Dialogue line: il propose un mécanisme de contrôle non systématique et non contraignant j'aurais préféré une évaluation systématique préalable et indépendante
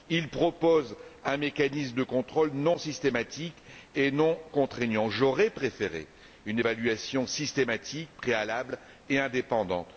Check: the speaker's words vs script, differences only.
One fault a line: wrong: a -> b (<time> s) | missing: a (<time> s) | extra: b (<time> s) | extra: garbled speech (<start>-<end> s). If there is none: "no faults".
no faults